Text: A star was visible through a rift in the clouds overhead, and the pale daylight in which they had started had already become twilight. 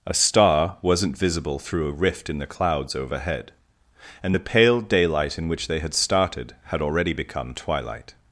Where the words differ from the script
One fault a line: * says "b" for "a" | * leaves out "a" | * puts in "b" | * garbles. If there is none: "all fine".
* says "wasn't" for "was"